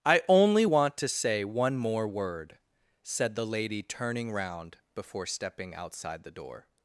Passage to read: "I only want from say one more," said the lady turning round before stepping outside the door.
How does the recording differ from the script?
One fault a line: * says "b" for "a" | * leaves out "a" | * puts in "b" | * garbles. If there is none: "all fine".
* says "to" for "from"
* puts in "word"